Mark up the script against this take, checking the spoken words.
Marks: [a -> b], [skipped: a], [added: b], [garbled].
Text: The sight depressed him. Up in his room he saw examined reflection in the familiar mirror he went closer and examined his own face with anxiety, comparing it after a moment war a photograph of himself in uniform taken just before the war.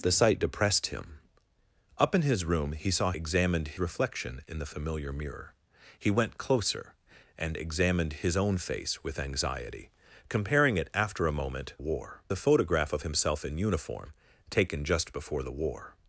The sight depressed him. Up in his room he saw examined reflection in the familiar mirror he went closer and examined his own face with anxiety, comparing it after a moment war a photograph of himself in uniform taken just before the war.